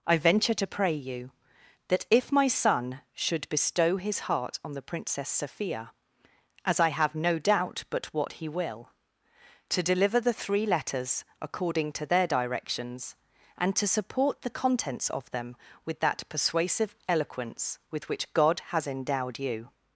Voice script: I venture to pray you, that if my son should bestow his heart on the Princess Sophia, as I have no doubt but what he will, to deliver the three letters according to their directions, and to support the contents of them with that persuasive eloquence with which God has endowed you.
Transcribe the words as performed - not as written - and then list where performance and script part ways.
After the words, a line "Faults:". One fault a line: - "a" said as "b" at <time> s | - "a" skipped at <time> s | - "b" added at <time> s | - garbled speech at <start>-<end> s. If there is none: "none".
I venture to pray you, that if my son should bestow his heart on the Princess Sophia, as I have no doubt but what he will, to deliver the three letters according to their directions, and to support the contents of them with that persuasive eloquence with which God has endowed you.
Faults:
none